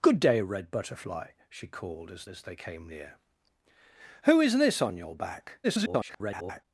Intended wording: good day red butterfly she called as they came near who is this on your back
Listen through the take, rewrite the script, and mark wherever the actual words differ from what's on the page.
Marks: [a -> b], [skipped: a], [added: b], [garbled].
good day red butterfly she called as [added: as] they came near who is this on your back [garbled]